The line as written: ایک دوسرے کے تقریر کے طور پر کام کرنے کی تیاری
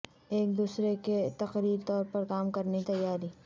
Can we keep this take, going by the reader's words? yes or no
no